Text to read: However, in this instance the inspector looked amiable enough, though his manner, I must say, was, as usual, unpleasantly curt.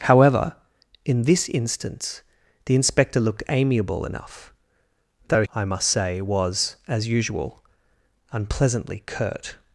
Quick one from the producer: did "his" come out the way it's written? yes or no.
no